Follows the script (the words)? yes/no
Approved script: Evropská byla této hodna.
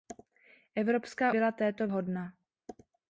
yes